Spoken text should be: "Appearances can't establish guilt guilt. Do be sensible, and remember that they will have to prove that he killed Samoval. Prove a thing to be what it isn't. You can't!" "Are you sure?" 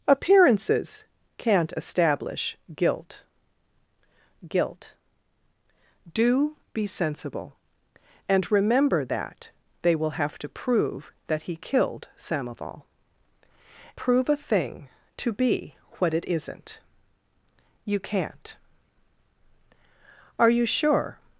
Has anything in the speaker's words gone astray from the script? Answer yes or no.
no